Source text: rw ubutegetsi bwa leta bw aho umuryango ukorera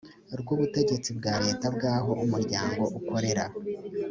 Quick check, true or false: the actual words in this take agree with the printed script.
true